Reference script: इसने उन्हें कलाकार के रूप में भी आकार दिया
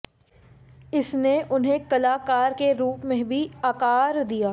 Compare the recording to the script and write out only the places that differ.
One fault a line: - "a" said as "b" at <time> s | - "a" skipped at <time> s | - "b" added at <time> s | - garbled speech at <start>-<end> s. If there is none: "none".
none